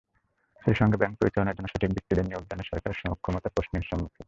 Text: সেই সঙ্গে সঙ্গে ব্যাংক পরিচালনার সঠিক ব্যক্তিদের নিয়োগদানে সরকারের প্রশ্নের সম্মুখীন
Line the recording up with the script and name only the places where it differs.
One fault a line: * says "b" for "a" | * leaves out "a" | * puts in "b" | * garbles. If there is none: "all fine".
* leaves out "সঙ্গে"
* puts in "জন্য"
* puts in "সক্ষমতা"